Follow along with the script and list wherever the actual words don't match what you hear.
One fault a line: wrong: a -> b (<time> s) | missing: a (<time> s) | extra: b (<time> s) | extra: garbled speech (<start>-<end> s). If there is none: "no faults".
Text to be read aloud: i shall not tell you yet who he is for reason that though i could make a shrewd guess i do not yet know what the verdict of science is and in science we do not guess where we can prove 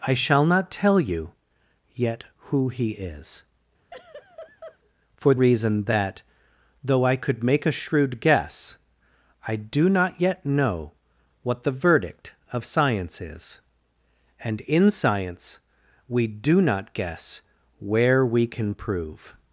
no faults